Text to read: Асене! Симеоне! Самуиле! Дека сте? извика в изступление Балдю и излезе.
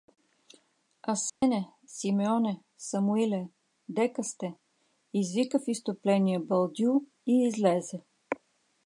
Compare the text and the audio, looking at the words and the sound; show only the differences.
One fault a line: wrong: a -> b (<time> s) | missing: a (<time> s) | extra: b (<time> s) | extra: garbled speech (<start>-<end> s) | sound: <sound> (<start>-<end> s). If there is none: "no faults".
sound: dropout (1.3-1.4 s)